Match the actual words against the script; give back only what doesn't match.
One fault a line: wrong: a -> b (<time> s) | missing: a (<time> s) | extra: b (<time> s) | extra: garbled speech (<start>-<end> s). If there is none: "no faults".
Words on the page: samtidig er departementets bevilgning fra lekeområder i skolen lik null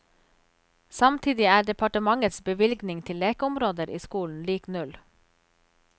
wrong: fra -> til (3.0 s)